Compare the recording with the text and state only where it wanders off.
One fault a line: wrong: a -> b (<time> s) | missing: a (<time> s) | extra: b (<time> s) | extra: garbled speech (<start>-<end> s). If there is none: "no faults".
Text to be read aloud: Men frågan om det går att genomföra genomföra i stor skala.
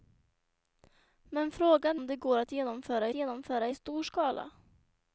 no faults